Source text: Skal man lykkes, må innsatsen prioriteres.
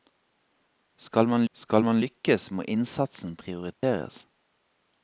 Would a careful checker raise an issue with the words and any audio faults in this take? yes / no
yes